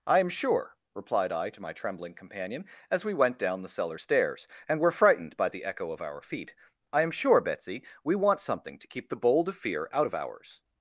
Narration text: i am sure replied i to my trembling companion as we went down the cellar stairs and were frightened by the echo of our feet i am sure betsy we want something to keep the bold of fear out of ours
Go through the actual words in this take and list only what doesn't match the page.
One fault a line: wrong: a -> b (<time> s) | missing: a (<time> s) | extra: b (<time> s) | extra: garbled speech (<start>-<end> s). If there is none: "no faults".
no faults